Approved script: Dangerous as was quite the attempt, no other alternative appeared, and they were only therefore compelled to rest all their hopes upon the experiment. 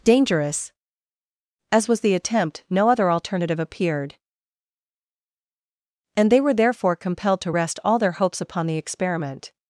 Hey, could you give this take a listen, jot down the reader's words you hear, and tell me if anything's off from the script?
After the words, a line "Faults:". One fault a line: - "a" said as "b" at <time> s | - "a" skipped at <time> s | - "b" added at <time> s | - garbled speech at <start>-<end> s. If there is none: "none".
Dangerous as was the attempt, no other alternative appeared, and they were therefore compelled to rest all their hopes upon the experiment.
Faults:
- "quite" skipped at 2.0 s
- "only" skipped at 6.5 s